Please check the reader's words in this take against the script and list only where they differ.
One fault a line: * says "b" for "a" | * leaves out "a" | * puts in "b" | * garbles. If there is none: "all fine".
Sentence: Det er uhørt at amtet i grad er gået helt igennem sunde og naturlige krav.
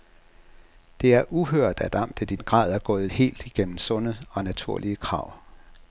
all fine